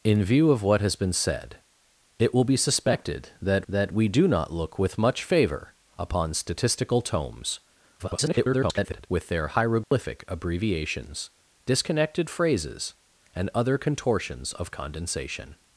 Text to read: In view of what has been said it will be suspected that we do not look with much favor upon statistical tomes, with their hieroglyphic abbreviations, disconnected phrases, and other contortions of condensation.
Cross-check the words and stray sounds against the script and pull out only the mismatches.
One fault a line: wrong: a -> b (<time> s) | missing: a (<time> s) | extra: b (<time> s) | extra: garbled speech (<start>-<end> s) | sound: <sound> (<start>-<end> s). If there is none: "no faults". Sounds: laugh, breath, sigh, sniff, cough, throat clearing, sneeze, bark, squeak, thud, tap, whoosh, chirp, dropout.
extra: that (3.7 s)
extra: garbled speech (8.0-9.1 s)
sound: dropout (9.8-9.9 s)